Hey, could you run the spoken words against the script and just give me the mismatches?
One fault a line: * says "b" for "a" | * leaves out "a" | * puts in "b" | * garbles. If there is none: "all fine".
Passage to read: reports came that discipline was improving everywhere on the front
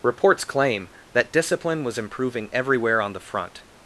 * says "claim" for "came"